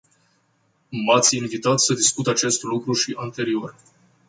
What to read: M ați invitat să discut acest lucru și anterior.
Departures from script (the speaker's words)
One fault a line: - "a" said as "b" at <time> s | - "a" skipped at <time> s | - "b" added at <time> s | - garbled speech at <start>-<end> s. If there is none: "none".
none